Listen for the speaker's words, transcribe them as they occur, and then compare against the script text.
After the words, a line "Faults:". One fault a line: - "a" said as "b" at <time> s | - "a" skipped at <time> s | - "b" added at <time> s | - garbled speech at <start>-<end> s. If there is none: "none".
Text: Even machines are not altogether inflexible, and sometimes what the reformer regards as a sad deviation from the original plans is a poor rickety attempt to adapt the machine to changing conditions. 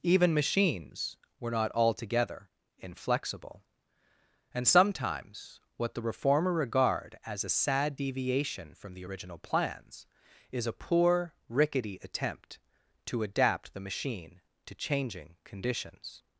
Even machines were not altogether inflexible, and sometimes what the reformer regard as a sad deviation from the original plans is a poor rickety attempt to adapt the machine to changing conditions.
Faults:
- "are" said as "were" at 1.4 s
- "regards" said as "regard" at 6.5 s